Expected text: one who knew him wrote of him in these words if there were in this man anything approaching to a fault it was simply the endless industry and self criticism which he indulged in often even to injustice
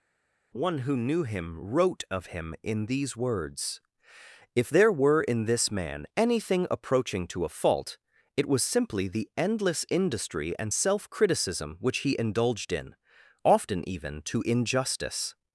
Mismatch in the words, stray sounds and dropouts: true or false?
false